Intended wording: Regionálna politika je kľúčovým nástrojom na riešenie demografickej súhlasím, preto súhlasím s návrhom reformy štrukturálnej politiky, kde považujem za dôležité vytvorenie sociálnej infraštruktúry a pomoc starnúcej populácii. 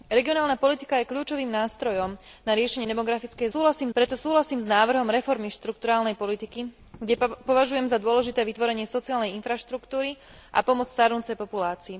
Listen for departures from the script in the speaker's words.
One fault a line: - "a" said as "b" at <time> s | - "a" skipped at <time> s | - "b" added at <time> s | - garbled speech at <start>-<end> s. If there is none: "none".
none